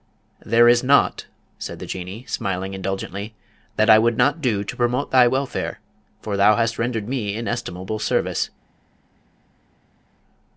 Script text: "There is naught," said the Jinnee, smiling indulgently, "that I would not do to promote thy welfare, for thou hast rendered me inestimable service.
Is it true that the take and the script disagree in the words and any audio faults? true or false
false